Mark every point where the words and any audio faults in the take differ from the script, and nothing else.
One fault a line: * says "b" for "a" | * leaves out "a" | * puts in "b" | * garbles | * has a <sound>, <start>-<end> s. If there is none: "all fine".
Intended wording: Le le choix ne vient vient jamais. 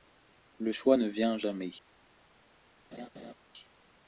* leaves out "le"
* leaves out "vient"
* has a laugh, 2.9-3.3 s